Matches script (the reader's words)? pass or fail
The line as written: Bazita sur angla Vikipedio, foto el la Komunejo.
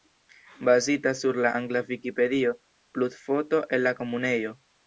fail